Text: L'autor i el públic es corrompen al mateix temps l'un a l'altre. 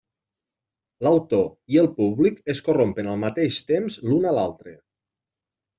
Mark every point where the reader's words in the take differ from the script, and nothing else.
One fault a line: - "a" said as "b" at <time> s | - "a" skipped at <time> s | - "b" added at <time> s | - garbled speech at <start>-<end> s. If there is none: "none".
none